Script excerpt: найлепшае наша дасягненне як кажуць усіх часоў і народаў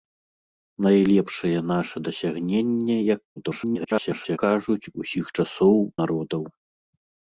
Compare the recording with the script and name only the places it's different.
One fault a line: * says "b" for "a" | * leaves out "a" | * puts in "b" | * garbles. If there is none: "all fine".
* garbles
* leaves out "і"